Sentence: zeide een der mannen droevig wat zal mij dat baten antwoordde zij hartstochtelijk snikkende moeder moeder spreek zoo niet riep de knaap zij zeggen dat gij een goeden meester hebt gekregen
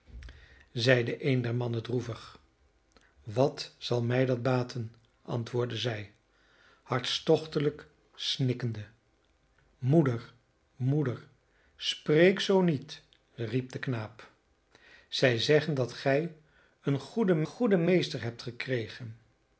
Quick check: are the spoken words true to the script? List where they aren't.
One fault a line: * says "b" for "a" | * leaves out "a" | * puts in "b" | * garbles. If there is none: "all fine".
* puts in "goeden"